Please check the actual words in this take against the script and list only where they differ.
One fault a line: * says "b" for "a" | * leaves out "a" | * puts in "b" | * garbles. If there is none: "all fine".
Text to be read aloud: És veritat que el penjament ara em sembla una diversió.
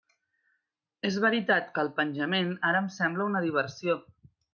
all fine